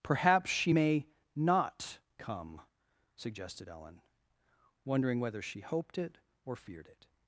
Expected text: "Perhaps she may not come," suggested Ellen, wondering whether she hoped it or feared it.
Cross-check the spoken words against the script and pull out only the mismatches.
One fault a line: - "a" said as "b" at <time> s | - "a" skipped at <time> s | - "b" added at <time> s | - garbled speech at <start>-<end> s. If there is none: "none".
none